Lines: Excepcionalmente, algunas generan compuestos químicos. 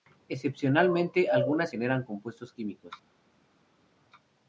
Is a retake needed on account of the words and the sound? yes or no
no